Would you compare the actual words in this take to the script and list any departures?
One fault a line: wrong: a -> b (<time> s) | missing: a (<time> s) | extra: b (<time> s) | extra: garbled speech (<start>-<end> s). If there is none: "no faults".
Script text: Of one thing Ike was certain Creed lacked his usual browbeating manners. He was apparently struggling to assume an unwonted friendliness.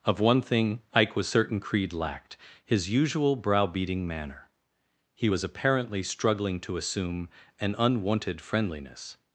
wrong: manners -> manner (4.1 s)